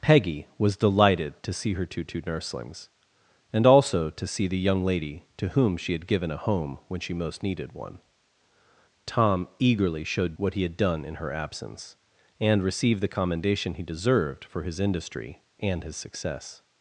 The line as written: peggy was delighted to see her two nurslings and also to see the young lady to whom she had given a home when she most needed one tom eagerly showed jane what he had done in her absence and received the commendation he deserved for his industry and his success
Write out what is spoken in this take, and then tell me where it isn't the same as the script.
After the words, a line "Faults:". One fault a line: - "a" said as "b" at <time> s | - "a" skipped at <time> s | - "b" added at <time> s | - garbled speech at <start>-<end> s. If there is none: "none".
peggy was delighted to see her two two nurslings and also to see the young lady to whom she had given a home when she most needed one tom eagerly showed what he had done in her absence and received the commendation he deserved for his industry and his success
Faults:
- "two" added at 2.0 s
- "jane" skipped at 10.4 s